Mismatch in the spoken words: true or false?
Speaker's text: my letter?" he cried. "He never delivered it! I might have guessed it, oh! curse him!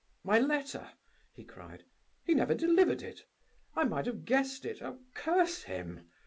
false